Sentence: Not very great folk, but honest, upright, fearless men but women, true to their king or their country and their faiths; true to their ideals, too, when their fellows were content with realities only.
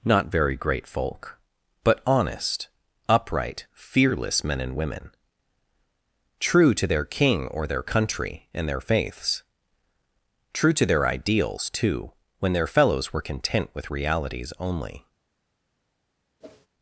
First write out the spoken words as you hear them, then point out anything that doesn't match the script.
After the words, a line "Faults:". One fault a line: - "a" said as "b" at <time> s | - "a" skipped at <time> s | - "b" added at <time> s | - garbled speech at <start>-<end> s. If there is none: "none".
Not very great folk, but honest, upright, fearless men and women, true to their king or their country and their faiths; true to their ideals, too, when their fellows were content with realities only.
Faults:
- "but" said as "and" at 4.6 s